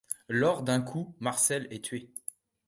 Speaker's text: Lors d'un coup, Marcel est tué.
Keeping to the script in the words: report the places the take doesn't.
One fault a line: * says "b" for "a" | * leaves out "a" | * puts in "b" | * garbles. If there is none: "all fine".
all fine